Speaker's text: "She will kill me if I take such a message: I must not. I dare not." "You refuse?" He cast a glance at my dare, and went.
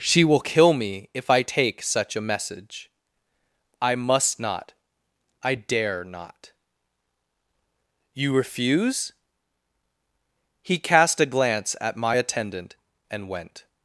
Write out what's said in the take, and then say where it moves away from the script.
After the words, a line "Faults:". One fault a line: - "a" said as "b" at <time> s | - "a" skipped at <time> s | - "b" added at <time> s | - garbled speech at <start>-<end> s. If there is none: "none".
"She will kill me if I take such a message: I must not. I dare not." "You refuse?" He cast a glance at my attendant, and went.
Faults:
- "dare" said as "attendant" at 12.1 s